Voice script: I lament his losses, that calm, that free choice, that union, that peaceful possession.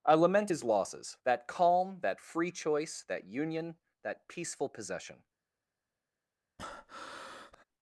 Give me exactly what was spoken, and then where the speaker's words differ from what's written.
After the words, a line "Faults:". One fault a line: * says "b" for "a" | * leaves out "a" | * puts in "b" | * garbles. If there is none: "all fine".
I lament his losses, that calm, that free choice, that union, that peaceful possession.
Faults:
all fine